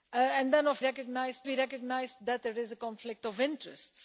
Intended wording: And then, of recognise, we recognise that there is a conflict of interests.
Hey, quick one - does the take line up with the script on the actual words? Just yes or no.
yes